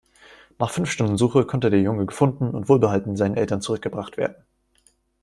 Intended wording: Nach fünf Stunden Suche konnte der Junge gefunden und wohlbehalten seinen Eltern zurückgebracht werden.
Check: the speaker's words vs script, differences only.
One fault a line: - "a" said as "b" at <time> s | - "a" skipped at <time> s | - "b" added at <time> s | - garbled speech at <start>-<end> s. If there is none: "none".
none